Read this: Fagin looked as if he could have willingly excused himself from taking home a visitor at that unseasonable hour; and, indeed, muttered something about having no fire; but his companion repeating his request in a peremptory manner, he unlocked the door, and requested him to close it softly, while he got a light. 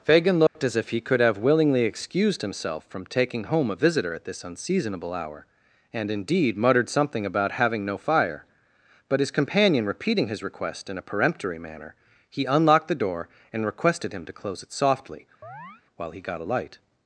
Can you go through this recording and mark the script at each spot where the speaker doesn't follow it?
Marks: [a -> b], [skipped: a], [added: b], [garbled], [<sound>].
Fagin looked [dropout] as if he could have willingly excused himself from taking home a visitor at [that -> this] unseasonable hour; and, indeed, muttered something about having no fire; but his companion repeating his request in a peremptory manner, he unlocked the door, and requested him to close it softly, [chirp] while he got a light.